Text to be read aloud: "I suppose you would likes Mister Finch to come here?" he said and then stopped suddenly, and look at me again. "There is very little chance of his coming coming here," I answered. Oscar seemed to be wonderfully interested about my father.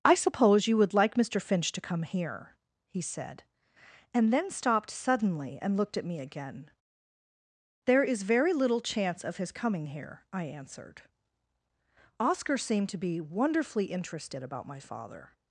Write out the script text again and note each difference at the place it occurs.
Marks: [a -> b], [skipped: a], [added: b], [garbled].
"I suppose you would [likes -> like] Mister Finch to come here?" he said and then stopped suddenly, and [look -> looked] at me again. "There is very little chance of his coming [skipped: coming] here," I answered. Oscar seemed to be wonderfully interested about my father.